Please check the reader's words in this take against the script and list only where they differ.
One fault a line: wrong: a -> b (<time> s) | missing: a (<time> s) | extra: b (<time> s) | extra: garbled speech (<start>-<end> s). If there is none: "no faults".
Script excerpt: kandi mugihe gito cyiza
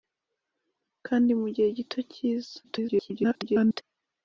extra: garbled speech (2.6-3.8 s)